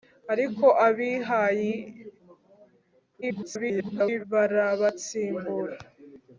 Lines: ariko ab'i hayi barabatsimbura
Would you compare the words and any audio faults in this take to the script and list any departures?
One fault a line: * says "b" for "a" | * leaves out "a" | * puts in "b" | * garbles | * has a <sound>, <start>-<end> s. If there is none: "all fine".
* garbles